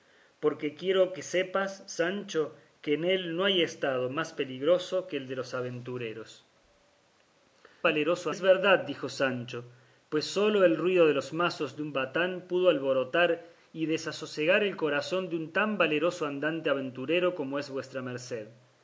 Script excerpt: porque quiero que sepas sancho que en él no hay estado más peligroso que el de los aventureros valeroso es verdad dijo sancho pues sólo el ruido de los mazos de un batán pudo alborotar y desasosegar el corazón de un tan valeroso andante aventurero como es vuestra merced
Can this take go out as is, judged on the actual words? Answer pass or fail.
pass